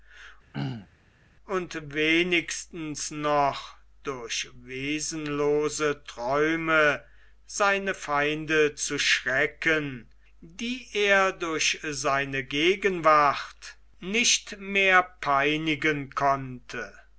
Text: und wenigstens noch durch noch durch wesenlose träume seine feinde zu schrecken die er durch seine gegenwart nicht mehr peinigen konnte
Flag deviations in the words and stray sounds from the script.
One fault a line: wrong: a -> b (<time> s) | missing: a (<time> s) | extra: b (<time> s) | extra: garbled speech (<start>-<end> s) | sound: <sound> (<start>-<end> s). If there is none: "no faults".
sound: throat clearing (0.5-0.9 s)
missing: noch durch (4.5 s)